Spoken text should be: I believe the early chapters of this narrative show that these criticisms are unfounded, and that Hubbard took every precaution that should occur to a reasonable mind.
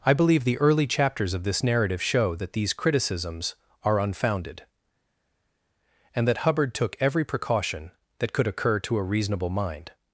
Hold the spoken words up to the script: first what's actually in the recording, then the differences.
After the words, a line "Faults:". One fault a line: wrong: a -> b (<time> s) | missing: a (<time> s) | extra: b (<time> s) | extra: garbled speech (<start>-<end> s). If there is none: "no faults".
I believe the early chapters of this narrative show that these criticisms are unfounded, and that Hubbard took every precaution that could occur to a reasonable mind.
Faults:
wrong: should -> could (8.3 s)